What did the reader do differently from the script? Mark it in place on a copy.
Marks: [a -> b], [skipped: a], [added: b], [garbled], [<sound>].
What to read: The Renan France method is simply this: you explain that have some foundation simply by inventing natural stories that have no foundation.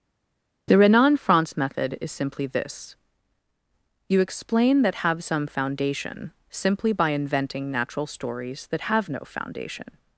The Renan France method is simply this: you explain that have some foundation simply by inventing natural stories that have no foundation.